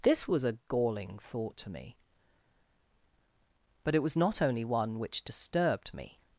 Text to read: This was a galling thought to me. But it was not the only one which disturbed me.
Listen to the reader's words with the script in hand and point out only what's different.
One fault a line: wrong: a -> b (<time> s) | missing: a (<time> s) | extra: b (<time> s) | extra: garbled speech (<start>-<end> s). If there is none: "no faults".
missing: the (4.4 s)